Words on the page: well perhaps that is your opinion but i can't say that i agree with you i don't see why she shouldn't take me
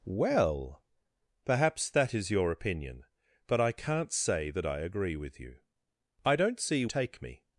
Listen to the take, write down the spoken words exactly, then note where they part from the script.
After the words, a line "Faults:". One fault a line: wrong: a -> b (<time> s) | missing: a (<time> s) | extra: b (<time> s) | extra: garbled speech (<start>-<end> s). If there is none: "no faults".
well perhaps that is your opinion but i can't say that i agree with you i don't see take me
Faults:
missing: why she shouldn't (6.8 s)